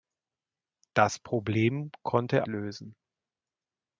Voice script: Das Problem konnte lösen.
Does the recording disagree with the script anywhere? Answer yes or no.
no